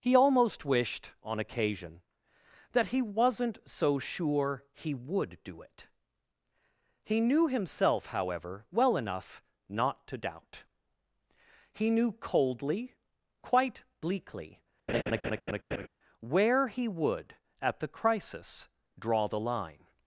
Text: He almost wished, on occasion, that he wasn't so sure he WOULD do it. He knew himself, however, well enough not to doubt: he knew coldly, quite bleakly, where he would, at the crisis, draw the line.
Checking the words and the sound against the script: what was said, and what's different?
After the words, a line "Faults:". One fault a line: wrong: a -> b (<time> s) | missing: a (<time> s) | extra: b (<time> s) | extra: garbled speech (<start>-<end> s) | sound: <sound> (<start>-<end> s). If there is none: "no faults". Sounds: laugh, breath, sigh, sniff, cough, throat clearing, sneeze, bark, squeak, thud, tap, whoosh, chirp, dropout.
He almost wished, on occasion, that he wasn't so sure he WOULD do it. He knew himself, however, well enough not to doubt: he knew coldly, quite bleakly, where he would, at the crisis, draw the line.
Faults:
sound: laugh (14.9-15.9 s)